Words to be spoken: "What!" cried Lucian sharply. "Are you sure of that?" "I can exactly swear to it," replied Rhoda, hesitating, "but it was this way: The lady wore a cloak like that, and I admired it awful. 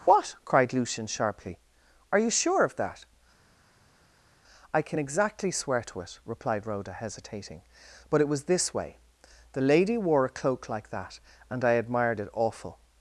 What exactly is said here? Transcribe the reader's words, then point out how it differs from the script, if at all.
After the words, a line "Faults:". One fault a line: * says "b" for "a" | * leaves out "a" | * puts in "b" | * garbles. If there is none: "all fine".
"What!" cried Lucian sharply. "Are you sure of that?" "I can exactly swear to it," replied Rhoda, hesitating, "but it was this way: The lady wore a cloak like that, and I admired it awful.
Faults:
all fine